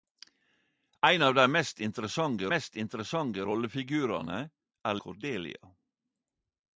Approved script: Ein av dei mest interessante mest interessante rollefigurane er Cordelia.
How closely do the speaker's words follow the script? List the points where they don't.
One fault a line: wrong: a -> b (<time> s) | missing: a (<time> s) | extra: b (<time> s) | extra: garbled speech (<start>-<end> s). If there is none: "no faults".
no faults